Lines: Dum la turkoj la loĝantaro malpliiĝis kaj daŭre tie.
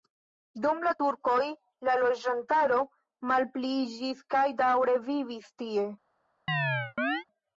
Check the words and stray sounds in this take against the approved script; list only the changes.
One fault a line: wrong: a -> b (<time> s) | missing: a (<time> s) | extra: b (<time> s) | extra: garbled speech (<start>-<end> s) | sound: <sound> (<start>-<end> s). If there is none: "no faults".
extra: vivis (5.1 s)
sound: chirp (6.5-7.2 s)